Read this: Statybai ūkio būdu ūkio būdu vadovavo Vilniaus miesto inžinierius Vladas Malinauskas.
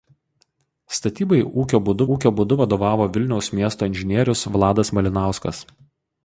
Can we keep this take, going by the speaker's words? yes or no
yes